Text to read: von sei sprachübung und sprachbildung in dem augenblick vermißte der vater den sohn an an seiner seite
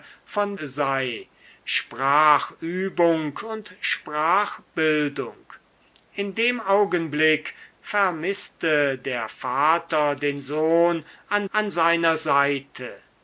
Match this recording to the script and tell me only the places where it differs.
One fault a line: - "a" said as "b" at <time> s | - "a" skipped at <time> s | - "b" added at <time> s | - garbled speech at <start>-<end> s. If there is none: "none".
none